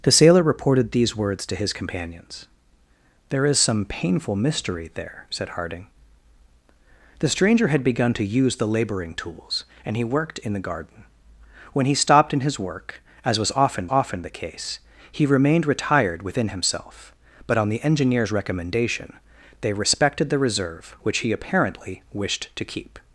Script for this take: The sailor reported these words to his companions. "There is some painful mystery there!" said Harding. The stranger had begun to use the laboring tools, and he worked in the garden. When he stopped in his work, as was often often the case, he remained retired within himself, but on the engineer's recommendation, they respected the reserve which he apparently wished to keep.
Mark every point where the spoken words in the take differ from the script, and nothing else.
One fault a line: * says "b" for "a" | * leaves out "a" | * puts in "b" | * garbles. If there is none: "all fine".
all fine